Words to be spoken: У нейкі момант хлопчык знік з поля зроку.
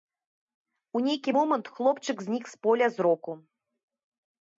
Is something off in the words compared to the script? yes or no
no